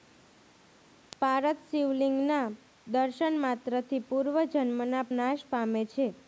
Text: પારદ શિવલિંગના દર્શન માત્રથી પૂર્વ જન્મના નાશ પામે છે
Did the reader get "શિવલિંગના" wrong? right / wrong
right